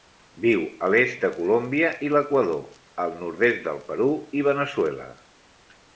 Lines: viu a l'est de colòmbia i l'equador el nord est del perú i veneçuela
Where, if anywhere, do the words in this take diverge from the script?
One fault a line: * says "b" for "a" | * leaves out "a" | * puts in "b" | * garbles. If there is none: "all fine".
all fine